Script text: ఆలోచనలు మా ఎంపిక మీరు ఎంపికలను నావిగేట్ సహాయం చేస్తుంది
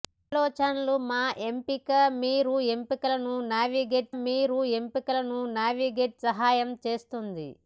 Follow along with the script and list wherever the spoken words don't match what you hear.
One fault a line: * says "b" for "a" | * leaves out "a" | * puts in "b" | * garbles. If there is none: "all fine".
* puts in "మీరు ఎంపికలను నావిగేట్"